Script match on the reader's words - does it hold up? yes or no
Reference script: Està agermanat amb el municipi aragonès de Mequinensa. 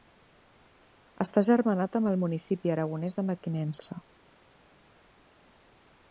yes